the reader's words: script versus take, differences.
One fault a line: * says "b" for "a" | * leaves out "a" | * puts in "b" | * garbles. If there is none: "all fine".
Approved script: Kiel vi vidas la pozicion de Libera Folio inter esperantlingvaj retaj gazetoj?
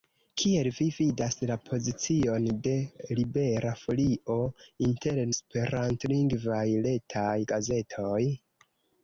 all fine